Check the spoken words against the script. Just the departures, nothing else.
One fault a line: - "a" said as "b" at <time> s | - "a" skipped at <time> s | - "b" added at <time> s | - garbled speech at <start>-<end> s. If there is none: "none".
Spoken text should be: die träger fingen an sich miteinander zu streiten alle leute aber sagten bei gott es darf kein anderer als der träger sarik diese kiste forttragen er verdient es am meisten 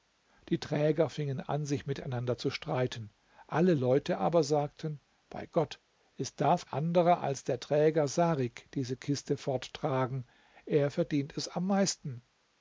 - "kein" skipped at 6.7 s